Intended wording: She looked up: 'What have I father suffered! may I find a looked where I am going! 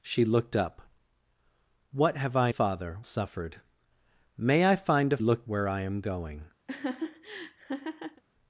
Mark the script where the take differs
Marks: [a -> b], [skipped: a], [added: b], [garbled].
She looked up: 'What have I father suffered! may I find a looked where I am going!